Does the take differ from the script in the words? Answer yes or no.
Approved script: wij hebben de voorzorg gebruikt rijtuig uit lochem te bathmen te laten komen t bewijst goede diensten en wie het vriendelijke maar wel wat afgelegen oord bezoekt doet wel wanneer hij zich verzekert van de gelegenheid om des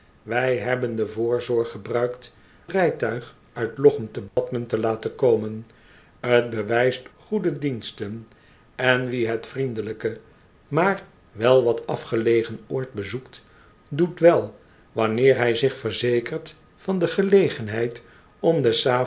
no